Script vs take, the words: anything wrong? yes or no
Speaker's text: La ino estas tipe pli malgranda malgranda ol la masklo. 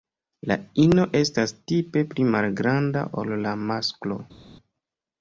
yes